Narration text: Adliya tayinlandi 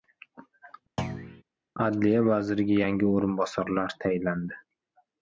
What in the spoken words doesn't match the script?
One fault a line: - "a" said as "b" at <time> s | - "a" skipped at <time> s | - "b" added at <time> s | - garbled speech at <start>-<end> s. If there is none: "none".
- "vaziriga yangi o‘rinbosarlar" added at 2.3 s